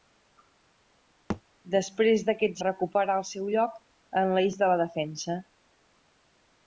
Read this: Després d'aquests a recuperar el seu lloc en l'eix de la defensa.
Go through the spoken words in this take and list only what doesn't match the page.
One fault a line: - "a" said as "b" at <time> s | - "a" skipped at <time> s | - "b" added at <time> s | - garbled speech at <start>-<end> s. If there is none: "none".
none